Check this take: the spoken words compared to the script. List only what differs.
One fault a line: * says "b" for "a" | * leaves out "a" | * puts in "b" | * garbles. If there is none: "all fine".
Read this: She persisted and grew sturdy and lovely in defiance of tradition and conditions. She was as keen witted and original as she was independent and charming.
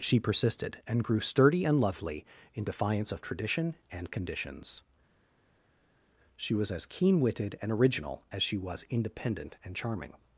all fine